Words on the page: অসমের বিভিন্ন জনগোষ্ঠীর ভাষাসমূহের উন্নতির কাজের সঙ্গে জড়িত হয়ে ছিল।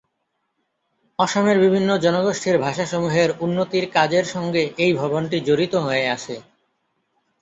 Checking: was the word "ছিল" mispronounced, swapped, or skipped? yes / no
yes